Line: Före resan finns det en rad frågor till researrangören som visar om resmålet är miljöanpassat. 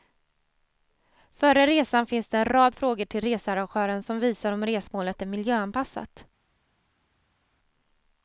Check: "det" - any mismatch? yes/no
no